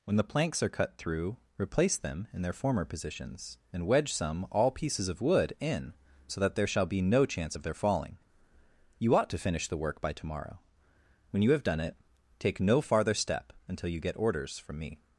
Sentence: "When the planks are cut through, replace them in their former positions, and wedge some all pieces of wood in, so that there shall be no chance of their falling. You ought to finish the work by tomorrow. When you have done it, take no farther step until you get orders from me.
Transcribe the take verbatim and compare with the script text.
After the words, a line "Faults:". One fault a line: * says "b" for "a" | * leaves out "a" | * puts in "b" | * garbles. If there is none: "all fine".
"When the planks are cut through, replace them in their former positions, and wedge some all pieces of wood in, so that there shall be no chance of their falling. You ought to finish the work by tomorrow. When you have done it, take no farther step until you get orders from me.
Faults:
all fine